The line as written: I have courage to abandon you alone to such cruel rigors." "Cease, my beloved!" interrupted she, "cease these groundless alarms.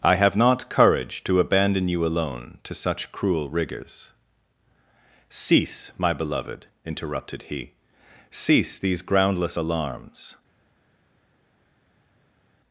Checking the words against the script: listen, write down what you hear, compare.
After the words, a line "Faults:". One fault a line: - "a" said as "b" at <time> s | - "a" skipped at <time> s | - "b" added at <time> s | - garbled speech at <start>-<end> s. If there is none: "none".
I have not courage to abandon you alone to such cruel rigors." "Cease, my beloved!" interrupted he, "cease these groundless alarms.
Faults:
- "not" added at 0.3 s
- "she" said as "he" at 7.4 s